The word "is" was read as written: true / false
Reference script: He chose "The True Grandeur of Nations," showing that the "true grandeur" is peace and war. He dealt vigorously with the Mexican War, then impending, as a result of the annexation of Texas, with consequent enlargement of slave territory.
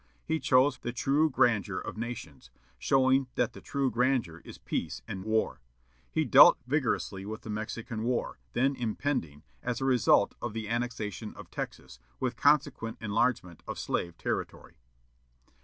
true